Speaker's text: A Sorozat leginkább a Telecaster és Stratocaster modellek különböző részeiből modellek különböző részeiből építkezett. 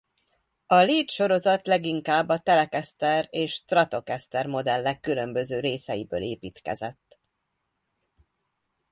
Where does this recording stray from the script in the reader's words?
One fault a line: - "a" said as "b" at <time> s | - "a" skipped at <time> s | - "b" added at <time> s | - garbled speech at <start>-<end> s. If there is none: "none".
- "Lead" added at 0.8 s
- "modellek különböző részeiből" skipped at 6.2 s